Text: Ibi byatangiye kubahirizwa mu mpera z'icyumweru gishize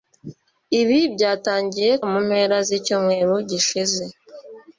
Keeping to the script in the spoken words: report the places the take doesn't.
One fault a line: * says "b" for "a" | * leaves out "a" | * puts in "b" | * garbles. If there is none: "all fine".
* leaves out "kubahirizwa"